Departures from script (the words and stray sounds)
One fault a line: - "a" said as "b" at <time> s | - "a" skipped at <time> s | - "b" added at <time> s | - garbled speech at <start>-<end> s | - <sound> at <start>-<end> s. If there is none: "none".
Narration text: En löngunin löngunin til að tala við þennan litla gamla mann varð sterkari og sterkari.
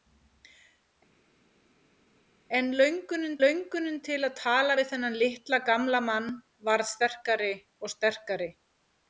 none